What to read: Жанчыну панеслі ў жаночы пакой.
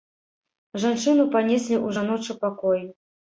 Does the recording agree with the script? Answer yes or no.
yes